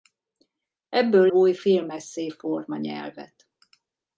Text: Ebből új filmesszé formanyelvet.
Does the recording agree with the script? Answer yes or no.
yes